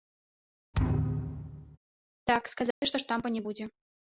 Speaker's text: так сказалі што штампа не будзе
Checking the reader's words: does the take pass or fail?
pass